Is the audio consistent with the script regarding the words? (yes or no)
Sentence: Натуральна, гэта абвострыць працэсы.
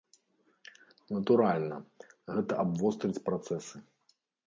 yes